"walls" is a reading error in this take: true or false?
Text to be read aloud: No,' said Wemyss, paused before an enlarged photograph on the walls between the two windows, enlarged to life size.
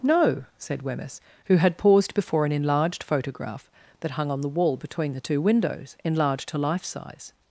true